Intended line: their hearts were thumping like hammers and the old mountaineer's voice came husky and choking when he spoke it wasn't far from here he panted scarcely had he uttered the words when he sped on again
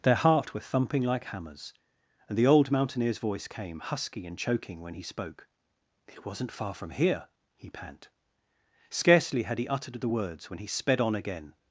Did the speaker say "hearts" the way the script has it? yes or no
no